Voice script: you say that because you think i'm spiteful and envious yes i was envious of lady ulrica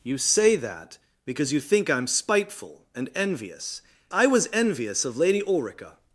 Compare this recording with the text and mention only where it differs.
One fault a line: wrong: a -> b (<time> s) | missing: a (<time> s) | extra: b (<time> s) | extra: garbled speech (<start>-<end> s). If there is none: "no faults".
missing: yes (3.8 s)